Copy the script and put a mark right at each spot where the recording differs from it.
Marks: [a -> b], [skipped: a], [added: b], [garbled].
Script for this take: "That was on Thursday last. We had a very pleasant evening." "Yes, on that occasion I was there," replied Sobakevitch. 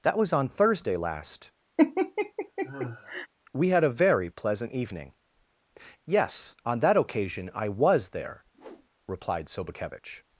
"That was on Thursday last. We had a very pleasant evening." "Yes, on that occasion I was there," replied Sobakevitch.